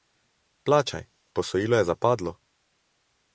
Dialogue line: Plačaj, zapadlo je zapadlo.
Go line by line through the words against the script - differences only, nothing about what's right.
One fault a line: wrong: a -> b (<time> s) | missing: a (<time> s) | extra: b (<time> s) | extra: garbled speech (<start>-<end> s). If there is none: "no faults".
wrong: zapadlo -> posojilo (1.3 s)